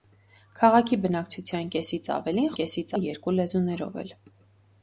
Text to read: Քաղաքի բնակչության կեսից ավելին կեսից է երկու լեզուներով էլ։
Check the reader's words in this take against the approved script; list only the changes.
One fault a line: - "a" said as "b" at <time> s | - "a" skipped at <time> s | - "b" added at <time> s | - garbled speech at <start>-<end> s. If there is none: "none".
none